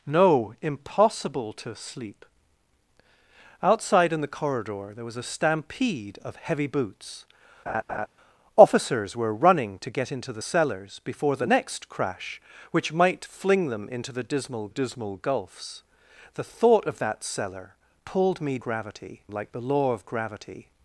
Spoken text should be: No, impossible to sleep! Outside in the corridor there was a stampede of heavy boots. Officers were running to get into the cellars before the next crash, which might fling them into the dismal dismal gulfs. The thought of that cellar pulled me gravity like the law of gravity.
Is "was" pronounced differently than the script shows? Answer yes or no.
no